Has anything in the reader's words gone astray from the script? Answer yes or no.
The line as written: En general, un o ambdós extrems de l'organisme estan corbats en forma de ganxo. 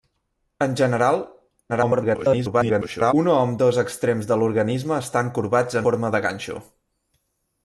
yes